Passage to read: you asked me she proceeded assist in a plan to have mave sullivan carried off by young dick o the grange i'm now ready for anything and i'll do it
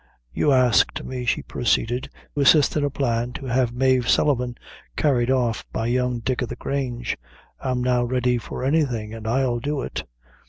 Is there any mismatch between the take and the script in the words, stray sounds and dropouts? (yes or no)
no